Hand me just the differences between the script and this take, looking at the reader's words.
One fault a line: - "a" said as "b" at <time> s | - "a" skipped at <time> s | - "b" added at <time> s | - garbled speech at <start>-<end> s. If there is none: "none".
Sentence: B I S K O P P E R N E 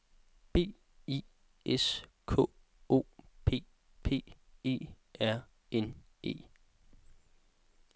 none